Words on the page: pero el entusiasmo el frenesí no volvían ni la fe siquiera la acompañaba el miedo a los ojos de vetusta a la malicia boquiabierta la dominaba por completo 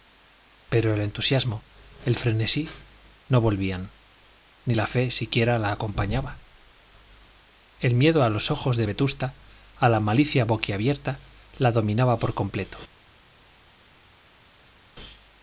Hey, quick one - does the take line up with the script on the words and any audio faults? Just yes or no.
yes